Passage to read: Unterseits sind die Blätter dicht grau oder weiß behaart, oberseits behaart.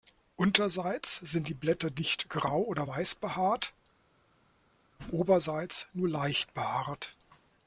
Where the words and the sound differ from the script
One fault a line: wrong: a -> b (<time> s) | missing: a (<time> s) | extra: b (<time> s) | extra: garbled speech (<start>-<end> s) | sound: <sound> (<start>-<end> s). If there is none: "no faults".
extra: nur leicht (5.9 s)